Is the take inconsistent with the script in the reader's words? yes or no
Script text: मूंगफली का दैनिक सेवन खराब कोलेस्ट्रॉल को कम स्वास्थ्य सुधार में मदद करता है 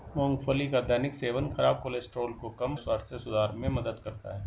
no